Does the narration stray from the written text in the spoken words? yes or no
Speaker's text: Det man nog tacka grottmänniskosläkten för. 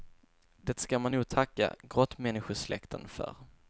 yes